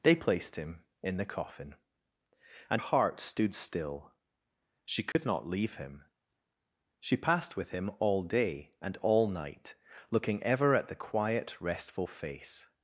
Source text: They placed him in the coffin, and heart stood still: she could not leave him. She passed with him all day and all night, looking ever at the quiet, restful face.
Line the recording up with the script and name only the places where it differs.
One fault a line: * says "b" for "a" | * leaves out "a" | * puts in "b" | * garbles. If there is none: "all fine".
all fine